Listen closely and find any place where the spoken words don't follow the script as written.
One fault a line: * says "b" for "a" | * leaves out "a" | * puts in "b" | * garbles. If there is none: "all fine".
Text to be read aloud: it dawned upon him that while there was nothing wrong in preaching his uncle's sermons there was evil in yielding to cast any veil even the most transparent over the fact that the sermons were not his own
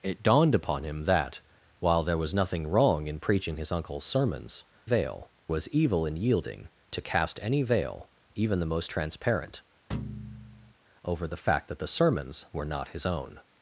* says "veil" for "there"